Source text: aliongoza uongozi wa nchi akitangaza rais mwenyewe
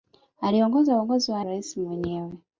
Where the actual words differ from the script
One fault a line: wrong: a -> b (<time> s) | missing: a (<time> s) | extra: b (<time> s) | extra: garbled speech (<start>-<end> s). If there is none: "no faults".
missing: nchi akitangaza (1.4 s)